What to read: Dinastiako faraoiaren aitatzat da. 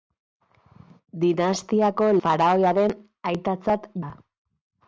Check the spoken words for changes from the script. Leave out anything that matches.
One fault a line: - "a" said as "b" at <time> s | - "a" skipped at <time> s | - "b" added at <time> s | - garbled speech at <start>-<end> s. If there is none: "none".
none